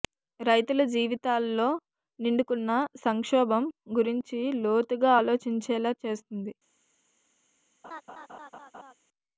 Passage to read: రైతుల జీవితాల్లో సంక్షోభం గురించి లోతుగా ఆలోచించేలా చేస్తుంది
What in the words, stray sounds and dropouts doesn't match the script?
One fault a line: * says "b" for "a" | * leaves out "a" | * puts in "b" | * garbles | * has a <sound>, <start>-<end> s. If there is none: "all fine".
* puts in "నిండుకున్న"
* has a laugh, 7.8-8.9 s